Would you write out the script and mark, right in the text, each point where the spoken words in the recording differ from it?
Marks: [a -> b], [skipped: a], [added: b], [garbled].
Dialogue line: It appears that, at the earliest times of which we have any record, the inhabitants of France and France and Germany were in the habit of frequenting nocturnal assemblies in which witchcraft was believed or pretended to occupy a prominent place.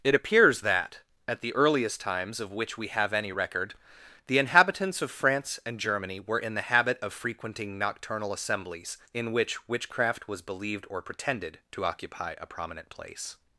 It appears that, at the earliest times of which we have any record, the inhabitants of France and [skipped: France and] Germany were in the habit of frequenting nocturnal assemblies in which witchcraft was believed or pretended to occupy a prominent place.